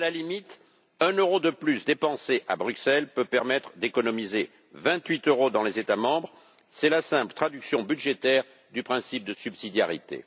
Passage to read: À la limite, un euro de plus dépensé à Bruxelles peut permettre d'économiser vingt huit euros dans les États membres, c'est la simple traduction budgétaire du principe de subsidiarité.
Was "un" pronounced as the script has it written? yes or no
yes